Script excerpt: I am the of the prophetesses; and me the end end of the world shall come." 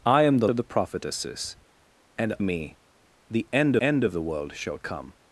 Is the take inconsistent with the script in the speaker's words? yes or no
no